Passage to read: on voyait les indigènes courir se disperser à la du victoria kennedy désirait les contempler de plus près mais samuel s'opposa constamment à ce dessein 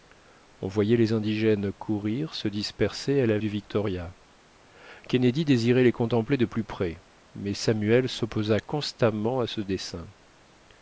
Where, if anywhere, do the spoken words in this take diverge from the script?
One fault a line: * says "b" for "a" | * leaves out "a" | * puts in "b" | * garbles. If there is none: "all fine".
all fine